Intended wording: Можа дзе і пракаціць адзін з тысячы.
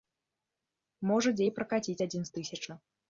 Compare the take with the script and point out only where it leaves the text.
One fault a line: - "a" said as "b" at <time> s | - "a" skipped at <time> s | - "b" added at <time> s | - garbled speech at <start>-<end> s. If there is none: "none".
none